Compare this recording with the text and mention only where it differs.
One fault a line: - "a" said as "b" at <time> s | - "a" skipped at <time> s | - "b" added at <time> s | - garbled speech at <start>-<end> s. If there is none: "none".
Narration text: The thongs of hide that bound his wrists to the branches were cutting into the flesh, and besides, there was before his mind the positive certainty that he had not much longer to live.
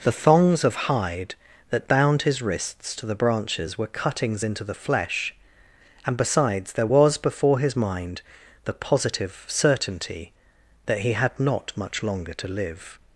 - "cutting" said as "cuttings" at 3.9 s